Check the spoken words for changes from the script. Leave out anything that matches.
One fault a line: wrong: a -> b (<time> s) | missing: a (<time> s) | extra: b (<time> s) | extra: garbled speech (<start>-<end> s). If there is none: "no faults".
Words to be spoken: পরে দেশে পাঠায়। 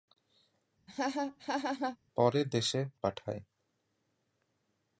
no faults